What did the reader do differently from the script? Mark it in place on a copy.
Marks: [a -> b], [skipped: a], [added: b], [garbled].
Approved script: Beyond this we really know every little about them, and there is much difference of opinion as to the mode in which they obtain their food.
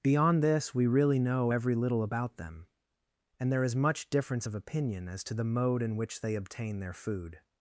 Beyond this we really know every little about them, and there is much difference of opinion as to the mode in which they obtain their food.